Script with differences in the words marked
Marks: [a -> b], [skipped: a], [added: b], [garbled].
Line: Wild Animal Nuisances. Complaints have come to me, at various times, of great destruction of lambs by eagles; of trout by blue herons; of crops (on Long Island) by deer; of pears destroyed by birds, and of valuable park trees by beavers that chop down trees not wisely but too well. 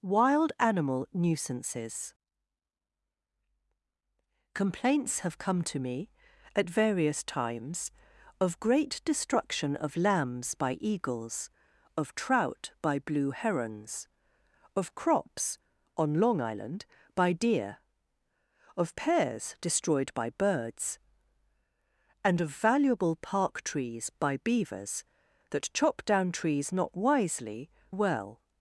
Wild Animal Nuisances. Complaints have come to me, at various times, of great destruction of lambs by eagles; of trout by blue herons; of crops (on Long Island) by deer; of pears destroyed by birds, and of valuable park trees by beavers that chop down trees not wisely [skipped: but too] well.